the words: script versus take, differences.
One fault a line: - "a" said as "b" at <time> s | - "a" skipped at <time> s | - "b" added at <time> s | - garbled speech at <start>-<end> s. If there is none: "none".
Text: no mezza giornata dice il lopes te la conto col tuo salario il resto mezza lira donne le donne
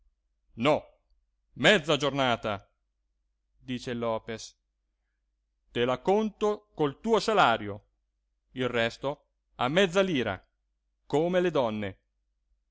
- "a" added at 9.6 s
- "donne" said as "come" at 11.0 s